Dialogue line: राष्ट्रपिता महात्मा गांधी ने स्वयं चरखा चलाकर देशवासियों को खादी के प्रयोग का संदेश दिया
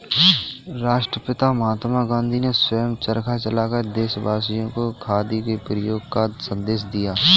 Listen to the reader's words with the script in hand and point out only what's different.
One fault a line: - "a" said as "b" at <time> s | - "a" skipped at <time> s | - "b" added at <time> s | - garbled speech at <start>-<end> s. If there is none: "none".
none